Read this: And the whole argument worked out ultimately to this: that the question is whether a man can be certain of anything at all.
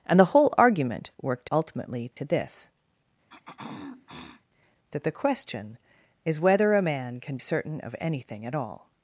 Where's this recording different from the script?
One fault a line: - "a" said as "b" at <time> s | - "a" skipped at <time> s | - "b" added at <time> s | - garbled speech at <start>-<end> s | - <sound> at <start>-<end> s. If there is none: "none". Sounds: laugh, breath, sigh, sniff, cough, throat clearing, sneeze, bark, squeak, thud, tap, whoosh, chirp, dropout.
- "out" skipped at 1.5 s
- dropout at 2.1-2.2 s
- throat clearing at 3.3-4.4 s
- "be" skipped at 7.4 s